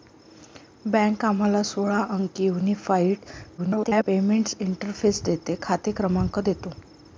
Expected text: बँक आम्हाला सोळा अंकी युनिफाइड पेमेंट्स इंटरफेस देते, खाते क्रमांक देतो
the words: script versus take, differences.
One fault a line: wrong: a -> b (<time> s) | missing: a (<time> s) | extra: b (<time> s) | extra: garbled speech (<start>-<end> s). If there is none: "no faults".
extra: garbled speech (3.6-4.0 s)